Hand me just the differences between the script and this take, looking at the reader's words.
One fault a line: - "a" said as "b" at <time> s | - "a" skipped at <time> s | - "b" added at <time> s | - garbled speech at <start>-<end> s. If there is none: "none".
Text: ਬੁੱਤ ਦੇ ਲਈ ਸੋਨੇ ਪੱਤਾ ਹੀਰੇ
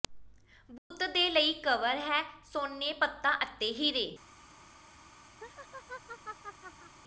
- "ਕਵਰ ਹੈ" added at 1.6 s
- "ਅਤੇ" added at 3.4 s